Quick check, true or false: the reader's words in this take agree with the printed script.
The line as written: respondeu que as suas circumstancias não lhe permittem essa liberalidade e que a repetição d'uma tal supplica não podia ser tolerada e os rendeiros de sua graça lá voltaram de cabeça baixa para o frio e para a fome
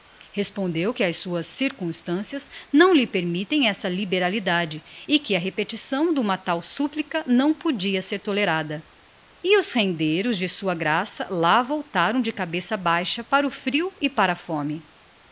true